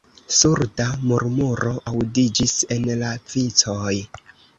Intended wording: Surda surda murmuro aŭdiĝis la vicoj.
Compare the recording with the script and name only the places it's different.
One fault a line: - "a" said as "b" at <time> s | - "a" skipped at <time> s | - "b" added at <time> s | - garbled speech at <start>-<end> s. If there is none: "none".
- "surda" skipped at 0.8 s
- "en" added at 2.8 s